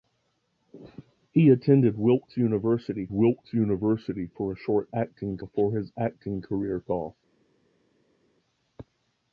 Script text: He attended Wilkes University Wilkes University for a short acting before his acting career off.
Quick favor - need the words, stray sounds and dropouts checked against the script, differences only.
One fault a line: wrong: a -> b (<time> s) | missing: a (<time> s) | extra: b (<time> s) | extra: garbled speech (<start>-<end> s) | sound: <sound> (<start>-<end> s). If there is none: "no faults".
no faults